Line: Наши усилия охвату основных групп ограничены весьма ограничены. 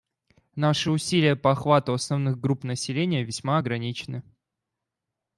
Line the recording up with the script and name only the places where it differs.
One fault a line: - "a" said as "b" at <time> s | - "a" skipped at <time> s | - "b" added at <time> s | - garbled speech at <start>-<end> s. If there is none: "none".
- "по" added at 1.3 s
- "ограничены" said as "населения" at 2.6 s